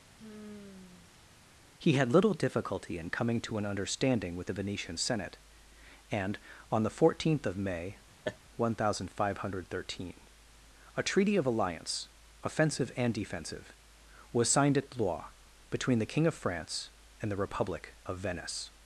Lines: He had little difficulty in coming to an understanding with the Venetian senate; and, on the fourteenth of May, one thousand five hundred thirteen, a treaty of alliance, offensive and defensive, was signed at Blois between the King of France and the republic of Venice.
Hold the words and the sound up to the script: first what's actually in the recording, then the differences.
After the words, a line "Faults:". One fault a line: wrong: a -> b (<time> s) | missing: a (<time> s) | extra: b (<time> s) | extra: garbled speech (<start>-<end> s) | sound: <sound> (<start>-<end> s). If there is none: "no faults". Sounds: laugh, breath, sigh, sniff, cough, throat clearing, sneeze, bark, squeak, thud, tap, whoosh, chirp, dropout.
He had little difficulty in coming to an understanding with the Venetian senate; and, on the fourteenth of May, one thousand five hundred thirteen, a treaty of alliance, offensive and defensive, was signed at Blois between the King of France and the republic of Venice.
Faults:
sound: sigh (0.2-1.3 s)
sound: laugh (8.2-8.4 s)